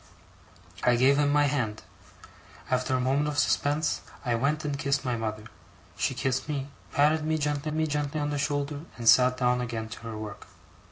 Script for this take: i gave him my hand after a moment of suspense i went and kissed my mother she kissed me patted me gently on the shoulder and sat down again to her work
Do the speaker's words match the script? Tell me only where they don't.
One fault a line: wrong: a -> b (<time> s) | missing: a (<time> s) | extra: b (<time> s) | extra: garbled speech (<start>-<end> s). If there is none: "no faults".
extra: me gently (7.7 s)